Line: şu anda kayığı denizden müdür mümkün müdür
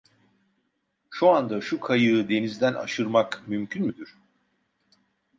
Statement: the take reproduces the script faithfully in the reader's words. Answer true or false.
false